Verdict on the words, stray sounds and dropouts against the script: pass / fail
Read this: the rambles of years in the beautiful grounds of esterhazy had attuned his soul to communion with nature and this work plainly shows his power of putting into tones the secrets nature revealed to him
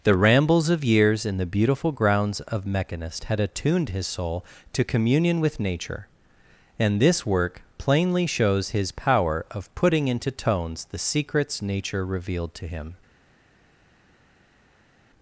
fail